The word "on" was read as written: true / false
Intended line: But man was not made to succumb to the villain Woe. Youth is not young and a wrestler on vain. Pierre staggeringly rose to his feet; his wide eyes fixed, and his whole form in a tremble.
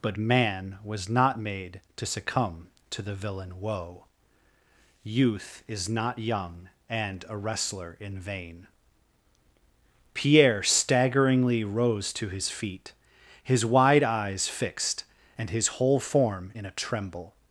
false